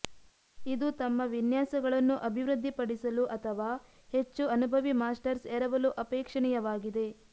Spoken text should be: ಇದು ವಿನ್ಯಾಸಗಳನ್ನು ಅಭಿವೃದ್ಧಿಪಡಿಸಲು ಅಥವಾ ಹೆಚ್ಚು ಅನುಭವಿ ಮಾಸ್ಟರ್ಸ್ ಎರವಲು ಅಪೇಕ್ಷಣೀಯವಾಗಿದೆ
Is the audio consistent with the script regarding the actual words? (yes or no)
no